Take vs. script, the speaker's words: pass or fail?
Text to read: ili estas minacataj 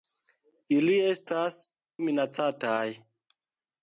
pass